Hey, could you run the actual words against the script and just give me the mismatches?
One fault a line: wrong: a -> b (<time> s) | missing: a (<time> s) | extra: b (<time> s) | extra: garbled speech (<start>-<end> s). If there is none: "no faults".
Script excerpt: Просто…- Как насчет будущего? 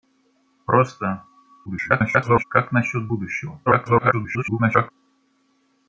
extra: garbled speech (1.7-2.4 s)
extra: garbled speech (3.7-4.9 s)